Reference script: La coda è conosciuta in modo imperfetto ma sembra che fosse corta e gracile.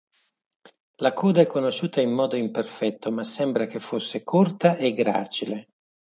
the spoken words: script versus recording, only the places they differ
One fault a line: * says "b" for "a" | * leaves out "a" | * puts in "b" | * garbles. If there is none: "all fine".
all fine